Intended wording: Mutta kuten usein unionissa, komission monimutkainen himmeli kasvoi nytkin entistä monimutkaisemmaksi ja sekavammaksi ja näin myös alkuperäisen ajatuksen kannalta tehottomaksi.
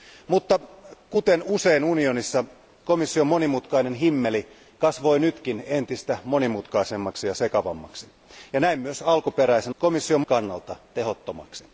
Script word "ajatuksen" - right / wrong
wrong